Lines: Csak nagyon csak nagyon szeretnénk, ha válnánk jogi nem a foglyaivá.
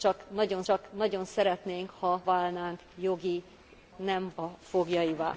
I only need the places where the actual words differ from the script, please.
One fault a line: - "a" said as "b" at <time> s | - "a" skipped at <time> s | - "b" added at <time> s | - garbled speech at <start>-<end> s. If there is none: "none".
none